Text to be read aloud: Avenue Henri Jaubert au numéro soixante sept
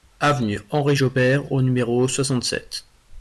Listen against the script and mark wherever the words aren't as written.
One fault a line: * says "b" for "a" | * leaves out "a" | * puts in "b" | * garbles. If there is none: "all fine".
all fine